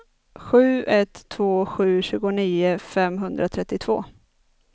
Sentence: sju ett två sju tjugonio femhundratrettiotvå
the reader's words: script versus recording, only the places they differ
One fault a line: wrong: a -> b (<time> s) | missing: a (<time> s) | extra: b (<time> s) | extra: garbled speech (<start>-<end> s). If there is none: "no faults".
no faults